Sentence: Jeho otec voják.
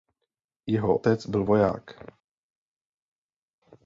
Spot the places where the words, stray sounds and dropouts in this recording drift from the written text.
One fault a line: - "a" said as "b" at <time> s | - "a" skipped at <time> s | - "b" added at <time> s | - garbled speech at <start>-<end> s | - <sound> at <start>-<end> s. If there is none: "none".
- "byl" added at 1.3 s